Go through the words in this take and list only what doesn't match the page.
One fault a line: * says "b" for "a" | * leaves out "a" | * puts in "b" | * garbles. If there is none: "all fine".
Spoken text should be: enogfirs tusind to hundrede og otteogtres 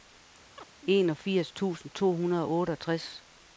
all fine